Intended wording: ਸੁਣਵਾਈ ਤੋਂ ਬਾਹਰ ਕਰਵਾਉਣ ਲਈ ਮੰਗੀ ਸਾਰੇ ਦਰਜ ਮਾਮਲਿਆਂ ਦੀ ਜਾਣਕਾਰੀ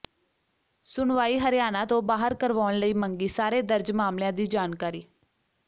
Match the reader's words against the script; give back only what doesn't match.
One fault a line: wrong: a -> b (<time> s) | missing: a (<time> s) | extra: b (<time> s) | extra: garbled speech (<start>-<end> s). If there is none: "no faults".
extra: ਹਰਿਆਣਾ (1.4 s)